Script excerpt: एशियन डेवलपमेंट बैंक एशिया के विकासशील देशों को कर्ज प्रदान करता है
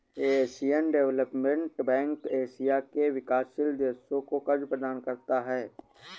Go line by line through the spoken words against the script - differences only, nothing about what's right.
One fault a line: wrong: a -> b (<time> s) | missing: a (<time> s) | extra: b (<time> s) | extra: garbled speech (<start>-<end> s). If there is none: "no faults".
no faults